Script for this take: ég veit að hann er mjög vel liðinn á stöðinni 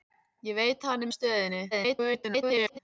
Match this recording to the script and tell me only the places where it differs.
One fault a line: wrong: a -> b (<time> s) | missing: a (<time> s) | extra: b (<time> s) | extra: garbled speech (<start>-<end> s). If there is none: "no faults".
missing: mjög vel liðinn (1.1 s)
extra: garbled speech (1.7-2.8 s)